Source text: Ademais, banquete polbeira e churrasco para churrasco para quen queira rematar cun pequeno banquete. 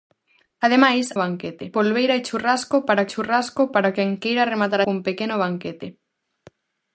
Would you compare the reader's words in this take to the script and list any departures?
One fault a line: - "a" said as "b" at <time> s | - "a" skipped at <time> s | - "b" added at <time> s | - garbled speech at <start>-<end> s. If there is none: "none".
none